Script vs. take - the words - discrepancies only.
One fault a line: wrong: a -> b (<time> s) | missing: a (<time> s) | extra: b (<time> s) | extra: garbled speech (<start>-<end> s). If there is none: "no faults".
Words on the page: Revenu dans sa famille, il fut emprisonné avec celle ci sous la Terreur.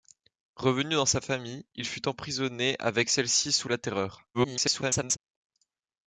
extra: garbled speech (4.3-5.2 s)